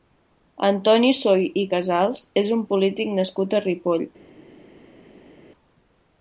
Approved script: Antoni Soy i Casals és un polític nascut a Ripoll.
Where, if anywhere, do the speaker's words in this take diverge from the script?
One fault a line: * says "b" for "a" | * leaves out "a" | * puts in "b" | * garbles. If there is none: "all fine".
all fine